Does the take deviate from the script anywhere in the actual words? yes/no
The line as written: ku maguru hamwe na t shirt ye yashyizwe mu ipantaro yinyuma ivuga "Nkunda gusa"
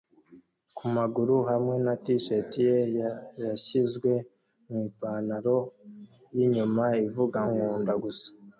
no